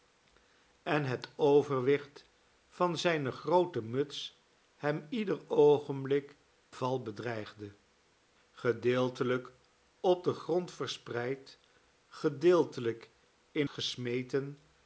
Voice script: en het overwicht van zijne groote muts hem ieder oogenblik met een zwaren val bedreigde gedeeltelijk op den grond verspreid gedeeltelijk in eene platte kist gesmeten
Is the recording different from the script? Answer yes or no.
yes